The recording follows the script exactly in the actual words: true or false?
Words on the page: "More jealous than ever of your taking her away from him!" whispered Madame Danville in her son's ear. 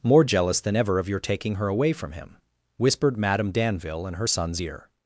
true